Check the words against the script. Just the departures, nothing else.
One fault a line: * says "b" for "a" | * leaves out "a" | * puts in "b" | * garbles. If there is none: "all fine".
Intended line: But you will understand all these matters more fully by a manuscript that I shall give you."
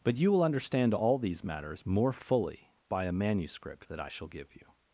all fine